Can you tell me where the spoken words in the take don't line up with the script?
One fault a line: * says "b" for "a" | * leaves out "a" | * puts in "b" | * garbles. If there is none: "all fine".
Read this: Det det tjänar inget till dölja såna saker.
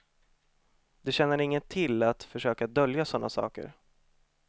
* leaves out "det"
* puts in "att försöka"